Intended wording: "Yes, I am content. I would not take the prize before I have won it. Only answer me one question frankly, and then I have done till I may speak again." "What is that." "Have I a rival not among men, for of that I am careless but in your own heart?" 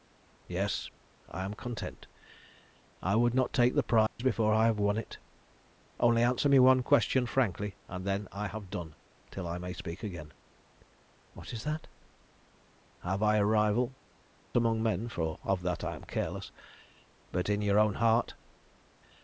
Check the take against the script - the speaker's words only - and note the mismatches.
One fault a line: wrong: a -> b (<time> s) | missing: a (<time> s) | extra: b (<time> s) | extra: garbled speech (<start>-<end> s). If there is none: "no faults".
missing: not (13.9 s)